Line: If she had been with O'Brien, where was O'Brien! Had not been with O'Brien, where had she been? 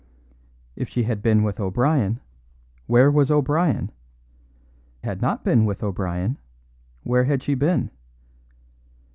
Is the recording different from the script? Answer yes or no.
no